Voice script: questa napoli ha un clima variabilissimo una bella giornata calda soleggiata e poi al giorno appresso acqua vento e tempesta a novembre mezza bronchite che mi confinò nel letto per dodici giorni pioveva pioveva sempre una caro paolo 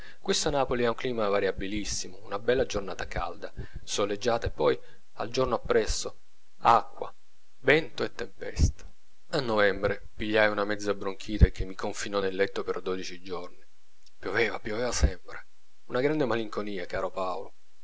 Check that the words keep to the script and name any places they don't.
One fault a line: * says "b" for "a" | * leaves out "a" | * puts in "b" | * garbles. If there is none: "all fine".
* puts in "pigliai una"
* puts in "grande malinconia"